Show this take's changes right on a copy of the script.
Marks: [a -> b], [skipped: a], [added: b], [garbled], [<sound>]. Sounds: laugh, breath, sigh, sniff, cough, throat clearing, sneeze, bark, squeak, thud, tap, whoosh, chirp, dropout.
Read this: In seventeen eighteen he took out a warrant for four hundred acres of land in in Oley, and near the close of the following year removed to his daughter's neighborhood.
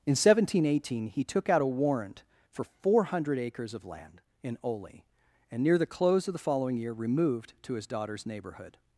In seventeen eighteen he took out a warrant for four hundred acres of land in [skipped: in] Oley, and near the close of the following year removed to his daughter's neighborhood.